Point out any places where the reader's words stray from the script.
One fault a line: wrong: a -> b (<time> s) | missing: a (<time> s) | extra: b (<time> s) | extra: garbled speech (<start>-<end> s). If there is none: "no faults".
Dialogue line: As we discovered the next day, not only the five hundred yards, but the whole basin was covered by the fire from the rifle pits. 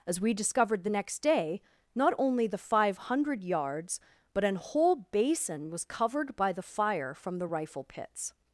wrong: the -> an (4.4 s)